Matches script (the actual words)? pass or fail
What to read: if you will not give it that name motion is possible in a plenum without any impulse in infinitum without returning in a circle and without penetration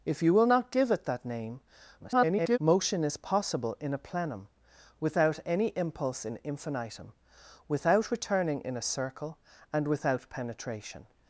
fail